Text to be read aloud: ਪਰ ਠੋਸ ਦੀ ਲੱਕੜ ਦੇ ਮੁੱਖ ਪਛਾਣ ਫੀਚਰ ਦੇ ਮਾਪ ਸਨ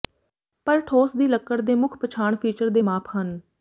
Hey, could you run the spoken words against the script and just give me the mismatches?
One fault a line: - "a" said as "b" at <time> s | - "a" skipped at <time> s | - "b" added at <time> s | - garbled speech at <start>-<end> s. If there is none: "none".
- "ਸਨ" said as "ਹਨ" at 3.2 s